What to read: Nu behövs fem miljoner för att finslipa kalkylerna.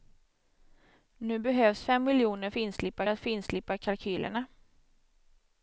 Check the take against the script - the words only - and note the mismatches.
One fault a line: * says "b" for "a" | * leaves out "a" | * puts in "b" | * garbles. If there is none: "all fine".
* says "finslipa" for "för"